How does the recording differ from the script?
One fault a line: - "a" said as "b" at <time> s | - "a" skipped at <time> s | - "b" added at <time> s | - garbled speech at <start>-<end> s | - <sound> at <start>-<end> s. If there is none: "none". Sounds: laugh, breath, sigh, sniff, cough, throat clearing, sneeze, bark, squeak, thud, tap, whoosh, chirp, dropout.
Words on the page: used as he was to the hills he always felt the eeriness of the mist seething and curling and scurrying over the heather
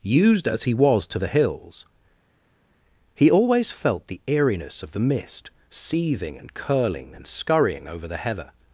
none